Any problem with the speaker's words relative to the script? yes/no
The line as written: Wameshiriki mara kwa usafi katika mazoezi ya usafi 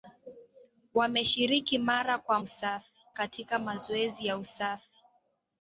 no